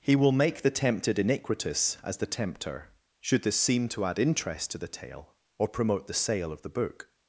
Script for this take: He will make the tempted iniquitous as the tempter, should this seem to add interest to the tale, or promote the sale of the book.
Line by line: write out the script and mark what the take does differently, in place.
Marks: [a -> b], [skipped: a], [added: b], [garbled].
He will make the tempted iniquitous as the tempter, should this seem to add interest to the tale, or promote the sale of the book.